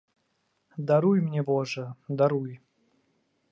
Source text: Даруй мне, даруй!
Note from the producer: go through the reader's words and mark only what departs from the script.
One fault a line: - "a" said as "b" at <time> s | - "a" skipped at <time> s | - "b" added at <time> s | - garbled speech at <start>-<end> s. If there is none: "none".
- "божа" added at 1.4 s